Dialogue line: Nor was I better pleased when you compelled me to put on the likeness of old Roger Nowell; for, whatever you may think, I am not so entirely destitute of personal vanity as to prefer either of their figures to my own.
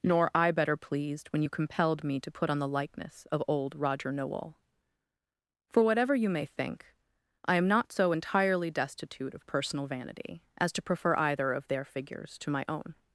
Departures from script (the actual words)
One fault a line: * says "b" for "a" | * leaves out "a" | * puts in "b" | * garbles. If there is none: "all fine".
* leaves out "was"